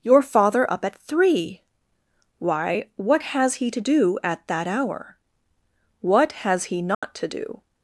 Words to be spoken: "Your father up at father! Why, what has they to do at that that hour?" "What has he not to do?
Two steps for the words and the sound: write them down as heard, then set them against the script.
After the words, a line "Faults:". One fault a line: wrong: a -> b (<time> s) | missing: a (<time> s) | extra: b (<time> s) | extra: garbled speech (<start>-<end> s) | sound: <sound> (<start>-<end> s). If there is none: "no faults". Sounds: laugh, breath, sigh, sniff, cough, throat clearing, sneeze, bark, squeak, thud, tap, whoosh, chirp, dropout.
"Your father up at three! Why, what has he to do at that hour?" "What has he not to do?
Faults:
wrong: father -> three (1.0 s)
wrong: they -> he (3.5 s)
missing: that (4.7 s)
sound: dropout (6.9-7.0 s)